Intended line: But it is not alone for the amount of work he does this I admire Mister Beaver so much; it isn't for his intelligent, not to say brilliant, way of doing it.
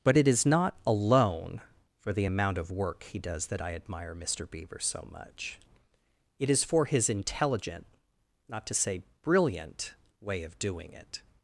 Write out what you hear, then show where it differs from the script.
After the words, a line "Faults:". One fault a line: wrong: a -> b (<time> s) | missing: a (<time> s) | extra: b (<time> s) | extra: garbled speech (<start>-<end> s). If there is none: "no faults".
But it is not alone for the amount of work he does that I admire Mister Beaver so much; it is for his intelligent, not to say brilliant, way of doing it.
Faults:
wrong: this -> that (3.5 s)
wrong: isn't -> is (6.5 s)